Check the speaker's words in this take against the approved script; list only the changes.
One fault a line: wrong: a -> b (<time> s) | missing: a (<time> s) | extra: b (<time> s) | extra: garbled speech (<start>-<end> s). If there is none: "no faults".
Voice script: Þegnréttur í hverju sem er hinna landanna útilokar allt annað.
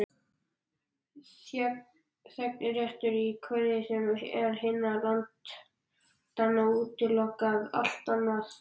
no faults